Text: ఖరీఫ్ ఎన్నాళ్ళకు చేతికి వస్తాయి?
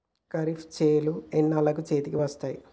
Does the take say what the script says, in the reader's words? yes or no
no